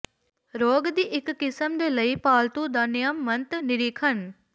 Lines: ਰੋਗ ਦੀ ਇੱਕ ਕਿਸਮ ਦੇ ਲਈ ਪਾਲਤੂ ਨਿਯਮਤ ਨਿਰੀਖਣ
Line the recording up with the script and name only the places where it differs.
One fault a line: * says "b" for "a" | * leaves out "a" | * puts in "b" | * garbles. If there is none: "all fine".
* puts in "ਦਾ"